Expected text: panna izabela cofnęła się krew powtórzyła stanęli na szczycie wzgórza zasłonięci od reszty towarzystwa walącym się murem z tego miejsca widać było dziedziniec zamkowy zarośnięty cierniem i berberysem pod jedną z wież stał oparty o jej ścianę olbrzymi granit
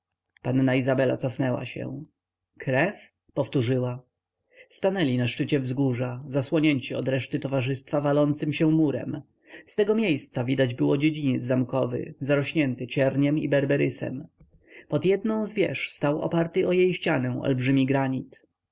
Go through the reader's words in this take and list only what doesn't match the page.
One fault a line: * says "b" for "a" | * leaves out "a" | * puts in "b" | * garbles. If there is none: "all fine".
all fine